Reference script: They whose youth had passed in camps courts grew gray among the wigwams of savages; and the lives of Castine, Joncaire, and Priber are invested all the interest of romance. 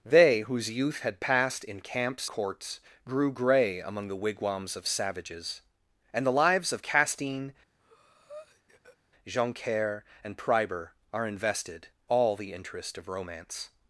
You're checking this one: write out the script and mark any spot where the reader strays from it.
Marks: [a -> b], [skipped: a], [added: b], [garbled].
They whose youth had passed in camps courts grew gray among the wigwams of savages; and the lives of Castine, Joncaire, and Priber are invested all the interest of romance.